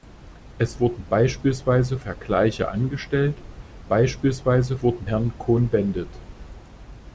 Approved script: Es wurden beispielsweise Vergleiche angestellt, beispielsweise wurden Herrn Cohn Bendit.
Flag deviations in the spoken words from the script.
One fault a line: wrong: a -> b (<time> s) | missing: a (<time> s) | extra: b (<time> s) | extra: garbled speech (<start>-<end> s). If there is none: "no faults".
no faults